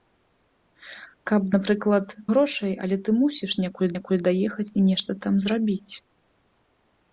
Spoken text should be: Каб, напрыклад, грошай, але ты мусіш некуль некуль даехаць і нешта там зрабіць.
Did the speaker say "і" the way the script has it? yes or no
yes